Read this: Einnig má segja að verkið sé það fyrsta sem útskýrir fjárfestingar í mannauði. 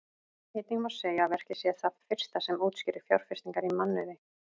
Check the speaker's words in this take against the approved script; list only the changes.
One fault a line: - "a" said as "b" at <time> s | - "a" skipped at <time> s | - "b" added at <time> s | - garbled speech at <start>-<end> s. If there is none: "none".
none